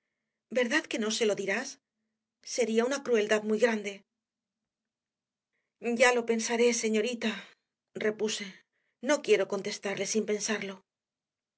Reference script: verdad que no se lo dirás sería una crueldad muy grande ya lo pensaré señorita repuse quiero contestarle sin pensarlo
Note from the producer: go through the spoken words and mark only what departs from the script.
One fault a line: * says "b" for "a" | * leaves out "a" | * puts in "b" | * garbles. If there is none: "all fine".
* puts in "no"